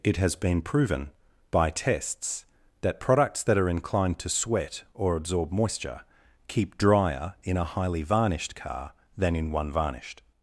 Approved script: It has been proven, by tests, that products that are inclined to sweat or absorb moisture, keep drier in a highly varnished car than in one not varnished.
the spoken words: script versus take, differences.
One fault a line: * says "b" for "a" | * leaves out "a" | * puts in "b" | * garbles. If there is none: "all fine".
* leaves out "not"